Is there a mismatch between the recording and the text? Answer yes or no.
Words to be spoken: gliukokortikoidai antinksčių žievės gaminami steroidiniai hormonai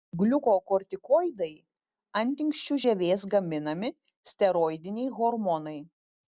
no